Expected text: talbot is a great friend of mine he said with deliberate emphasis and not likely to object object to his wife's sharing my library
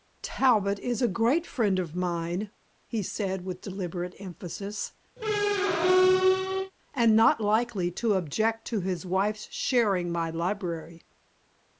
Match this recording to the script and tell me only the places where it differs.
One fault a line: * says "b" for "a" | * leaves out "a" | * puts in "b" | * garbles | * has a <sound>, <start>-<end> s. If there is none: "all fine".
* has a squeak, 5.2-6.7 s
* leaves out "object"